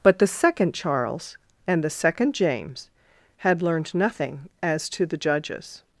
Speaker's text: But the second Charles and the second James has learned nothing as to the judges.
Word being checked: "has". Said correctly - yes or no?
no